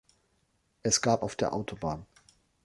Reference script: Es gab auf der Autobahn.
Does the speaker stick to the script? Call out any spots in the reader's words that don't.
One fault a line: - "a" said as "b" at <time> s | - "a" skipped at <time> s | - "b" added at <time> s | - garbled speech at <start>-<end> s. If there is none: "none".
none